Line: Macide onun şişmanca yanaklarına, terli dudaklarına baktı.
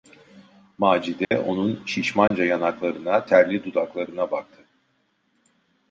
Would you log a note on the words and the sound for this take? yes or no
yes